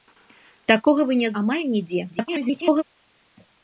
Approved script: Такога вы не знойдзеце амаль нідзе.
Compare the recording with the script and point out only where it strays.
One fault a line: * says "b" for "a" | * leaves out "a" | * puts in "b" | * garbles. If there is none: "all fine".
* leaves out "знойдзеце"
* garbles